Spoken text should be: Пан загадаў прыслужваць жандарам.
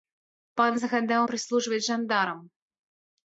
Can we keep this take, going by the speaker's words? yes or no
yes